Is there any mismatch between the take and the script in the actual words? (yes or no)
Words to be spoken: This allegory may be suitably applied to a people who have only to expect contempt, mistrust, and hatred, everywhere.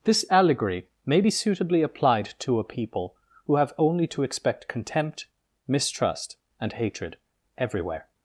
no